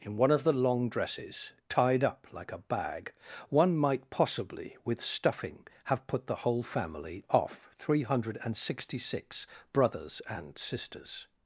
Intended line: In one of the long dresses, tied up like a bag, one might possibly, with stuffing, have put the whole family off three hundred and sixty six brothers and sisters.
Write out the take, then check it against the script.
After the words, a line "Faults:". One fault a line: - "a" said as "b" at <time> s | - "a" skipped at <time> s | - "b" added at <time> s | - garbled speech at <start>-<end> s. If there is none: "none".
In one of the long dresses, tied up like a bag, one might possibly, with stuffing, have put the whole family off three hundred and sixty six brothers and sisters.
Faults:
none